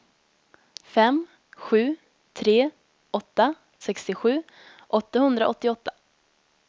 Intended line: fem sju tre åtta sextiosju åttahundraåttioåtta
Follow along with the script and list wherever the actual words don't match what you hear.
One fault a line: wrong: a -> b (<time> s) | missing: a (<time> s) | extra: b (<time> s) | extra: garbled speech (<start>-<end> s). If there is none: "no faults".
no faults